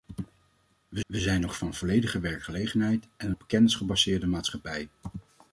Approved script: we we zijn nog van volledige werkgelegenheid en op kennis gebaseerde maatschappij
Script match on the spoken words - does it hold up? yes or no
yes